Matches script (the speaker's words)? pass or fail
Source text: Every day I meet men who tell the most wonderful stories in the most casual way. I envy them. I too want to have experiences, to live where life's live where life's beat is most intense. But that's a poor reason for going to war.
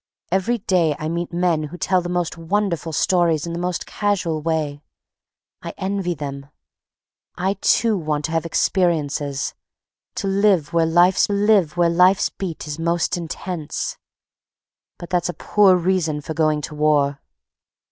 pass